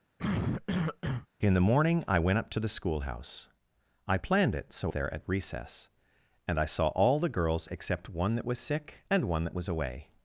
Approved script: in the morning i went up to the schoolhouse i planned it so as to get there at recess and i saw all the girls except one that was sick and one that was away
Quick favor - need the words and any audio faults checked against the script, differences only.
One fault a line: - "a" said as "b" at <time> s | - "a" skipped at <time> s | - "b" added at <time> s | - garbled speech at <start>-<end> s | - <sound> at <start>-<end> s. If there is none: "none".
- cough at 0.2-1.3 s
- "as to get" skipped at 4.9 s